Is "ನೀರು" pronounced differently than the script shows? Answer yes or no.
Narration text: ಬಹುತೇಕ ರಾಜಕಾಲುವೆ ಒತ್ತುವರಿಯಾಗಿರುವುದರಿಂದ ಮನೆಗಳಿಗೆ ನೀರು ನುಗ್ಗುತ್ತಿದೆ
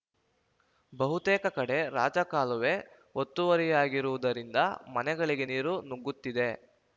no